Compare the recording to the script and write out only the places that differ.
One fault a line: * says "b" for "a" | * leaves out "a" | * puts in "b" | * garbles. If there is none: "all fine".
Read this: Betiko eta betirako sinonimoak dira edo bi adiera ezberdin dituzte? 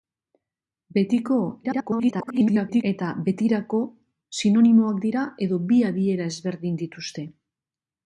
* garbles